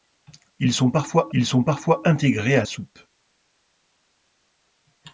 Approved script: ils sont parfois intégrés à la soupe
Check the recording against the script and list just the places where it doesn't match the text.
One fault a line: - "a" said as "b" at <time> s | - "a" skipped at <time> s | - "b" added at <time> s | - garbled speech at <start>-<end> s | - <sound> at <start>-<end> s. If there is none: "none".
- "ils sont parfois" added at 1.3 s
- "la" skipped at 2.6 s